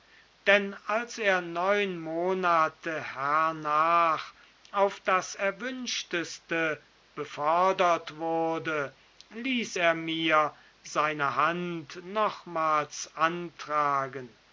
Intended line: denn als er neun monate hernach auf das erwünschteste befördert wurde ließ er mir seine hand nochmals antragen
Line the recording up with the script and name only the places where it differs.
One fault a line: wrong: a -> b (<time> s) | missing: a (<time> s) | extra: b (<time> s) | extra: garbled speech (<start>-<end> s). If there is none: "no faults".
no faults